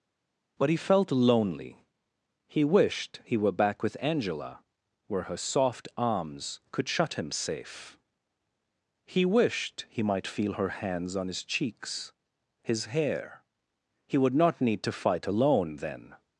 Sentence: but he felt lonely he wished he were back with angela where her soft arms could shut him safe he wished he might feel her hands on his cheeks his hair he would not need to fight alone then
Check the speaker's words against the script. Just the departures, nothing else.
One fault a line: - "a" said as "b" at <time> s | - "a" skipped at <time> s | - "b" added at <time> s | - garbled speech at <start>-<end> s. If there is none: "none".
none